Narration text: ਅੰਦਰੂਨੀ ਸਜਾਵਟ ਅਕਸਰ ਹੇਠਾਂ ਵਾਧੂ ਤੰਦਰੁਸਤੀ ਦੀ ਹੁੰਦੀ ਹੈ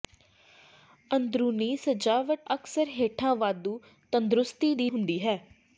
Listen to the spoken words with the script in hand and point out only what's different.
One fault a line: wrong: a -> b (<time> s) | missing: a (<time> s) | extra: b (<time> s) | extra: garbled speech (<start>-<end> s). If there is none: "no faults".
no faults